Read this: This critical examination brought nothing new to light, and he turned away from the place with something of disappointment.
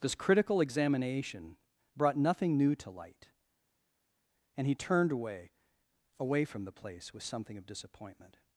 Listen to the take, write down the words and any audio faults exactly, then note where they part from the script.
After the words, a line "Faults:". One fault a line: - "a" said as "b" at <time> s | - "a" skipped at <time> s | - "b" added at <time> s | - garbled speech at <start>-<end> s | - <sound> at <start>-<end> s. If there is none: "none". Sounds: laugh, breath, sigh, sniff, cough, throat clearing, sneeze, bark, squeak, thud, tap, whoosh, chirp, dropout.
This critical examination brought nothing new to light, and he turned away away from the place with something of disappointment.
Faults:
- "away" added at 6.2 s